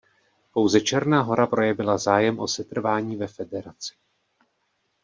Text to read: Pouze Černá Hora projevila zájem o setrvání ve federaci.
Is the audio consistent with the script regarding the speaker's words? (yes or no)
yes